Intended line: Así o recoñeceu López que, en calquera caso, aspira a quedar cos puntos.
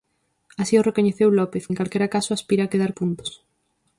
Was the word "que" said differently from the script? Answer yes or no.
yes